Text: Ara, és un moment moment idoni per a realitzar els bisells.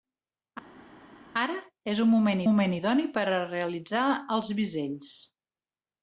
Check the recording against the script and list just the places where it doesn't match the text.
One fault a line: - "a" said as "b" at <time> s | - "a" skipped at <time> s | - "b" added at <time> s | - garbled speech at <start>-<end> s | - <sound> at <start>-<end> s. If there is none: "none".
none